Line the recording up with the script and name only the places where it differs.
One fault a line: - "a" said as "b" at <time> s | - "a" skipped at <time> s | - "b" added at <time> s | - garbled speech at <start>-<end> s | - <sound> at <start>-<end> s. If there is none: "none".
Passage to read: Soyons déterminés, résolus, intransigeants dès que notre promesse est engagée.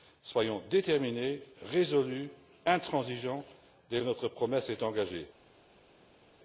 none